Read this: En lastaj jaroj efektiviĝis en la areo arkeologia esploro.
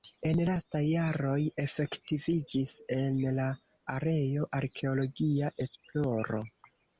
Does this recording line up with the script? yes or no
yes